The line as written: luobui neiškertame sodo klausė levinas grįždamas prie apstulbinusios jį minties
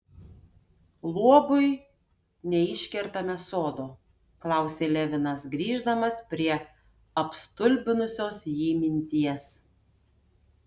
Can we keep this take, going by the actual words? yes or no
yes